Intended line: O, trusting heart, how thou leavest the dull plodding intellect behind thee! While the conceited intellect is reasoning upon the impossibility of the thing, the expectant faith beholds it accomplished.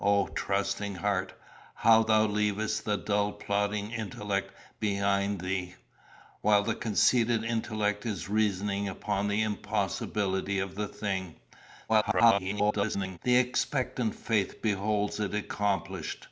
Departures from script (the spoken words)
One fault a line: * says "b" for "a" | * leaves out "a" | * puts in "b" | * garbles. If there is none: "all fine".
* garbles